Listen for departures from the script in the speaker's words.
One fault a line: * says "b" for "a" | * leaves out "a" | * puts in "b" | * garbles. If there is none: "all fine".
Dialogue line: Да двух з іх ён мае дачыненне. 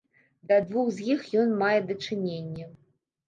all fine